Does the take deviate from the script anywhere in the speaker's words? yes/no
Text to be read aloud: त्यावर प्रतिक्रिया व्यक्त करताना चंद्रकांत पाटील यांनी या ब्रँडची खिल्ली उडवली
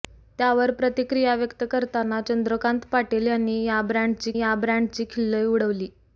yes